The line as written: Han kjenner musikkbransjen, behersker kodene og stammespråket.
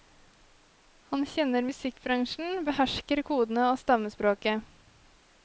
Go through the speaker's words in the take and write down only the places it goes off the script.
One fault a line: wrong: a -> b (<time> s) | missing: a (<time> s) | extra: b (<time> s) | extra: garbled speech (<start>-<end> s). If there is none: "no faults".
no faults